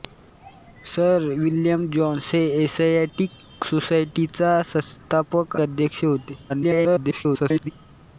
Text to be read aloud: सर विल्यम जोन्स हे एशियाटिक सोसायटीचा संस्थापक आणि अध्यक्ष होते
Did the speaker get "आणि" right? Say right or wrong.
wrong